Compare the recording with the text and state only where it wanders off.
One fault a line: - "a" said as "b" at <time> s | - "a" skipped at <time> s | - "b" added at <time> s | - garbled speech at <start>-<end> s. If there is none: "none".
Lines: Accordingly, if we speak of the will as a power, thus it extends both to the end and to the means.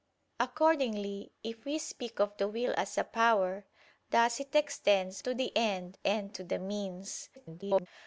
- "both" skipped at 5.2 s
- garbled speech at 7.4-7.9 s